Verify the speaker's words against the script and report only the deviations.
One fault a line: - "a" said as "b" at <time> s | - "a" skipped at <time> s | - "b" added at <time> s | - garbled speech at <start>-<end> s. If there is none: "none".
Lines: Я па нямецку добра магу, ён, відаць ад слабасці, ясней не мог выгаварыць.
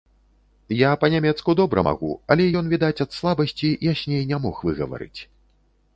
- "але" added at 2.3 s